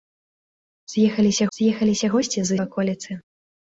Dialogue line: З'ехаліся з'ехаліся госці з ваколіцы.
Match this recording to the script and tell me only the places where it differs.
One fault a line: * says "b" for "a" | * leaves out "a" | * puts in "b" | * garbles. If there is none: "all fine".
all fine